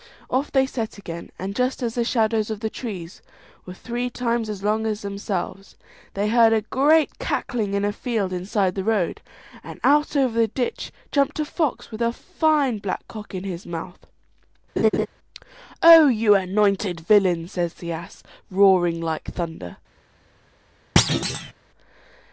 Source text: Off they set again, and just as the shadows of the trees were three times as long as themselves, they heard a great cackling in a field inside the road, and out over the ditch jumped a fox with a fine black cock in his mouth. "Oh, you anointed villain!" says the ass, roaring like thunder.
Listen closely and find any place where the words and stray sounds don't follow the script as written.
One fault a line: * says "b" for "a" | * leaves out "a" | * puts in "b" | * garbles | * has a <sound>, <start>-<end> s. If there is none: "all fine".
* has a laugh, 14.8-15.1 s
* has a thud, 21.0-21.5 s